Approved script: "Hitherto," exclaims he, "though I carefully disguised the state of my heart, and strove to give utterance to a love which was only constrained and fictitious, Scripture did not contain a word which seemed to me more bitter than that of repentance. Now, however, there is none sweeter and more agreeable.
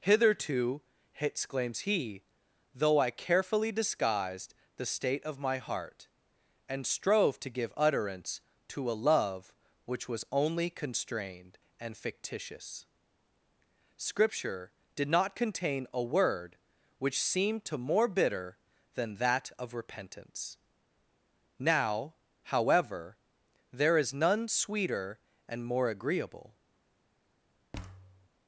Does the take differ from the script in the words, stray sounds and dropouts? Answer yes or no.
yes